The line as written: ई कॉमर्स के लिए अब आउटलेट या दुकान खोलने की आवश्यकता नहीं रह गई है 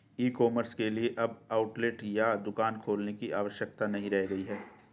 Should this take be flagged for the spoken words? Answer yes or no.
no